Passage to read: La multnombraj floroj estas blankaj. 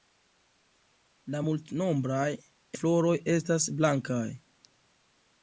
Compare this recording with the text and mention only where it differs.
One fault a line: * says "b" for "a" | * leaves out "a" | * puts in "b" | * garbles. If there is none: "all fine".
all fine